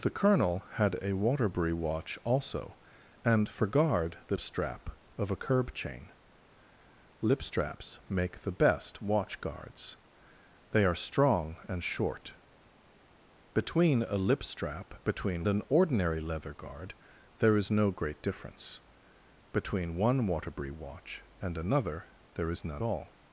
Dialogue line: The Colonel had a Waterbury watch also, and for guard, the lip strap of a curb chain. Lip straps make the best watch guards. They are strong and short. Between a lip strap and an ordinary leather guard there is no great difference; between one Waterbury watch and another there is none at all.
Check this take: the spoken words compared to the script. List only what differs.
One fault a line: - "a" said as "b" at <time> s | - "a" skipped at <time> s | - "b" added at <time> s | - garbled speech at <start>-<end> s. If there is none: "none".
- "lip" skipped at 4.3 s
- "and" said as "between" at 15.0 s
- "at" skipped at 22.8 s